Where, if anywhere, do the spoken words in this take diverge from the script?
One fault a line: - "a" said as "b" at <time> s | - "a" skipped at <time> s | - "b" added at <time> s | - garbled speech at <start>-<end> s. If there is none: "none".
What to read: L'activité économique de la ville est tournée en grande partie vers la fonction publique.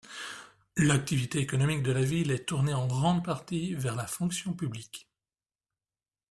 none